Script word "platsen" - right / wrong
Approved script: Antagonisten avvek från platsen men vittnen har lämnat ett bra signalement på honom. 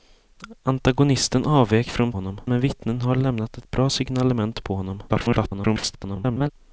wrong